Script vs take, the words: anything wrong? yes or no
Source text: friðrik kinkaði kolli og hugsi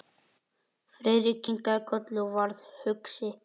yes